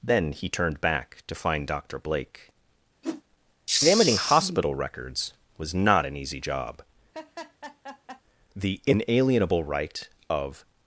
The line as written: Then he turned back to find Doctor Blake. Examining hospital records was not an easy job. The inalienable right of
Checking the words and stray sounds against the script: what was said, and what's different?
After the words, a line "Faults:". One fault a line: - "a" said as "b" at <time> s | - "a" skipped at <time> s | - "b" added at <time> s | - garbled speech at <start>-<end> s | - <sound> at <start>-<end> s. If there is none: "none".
Then he turned back to find Doctor Blake. Examining hospital records was not an easy job. The inalienable right of
Faults:
- whoosh at 3.0-3.2 s
- laugh at 7.1-8.2 s